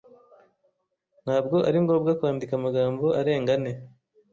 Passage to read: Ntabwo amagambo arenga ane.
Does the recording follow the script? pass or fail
fail